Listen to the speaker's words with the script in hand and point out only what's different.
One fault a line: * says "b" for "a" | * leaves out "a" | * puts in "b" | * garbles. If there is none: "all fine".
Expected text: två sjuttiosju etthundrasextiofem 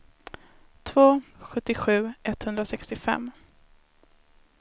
all fine